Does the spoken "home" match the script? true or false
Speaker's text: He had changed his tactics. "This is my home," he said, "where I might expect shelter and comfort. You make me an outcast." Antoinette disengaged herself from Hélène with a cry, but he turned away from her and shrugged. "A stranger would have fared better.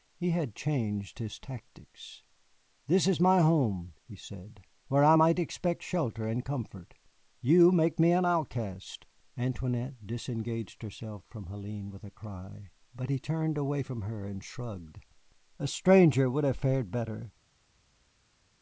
true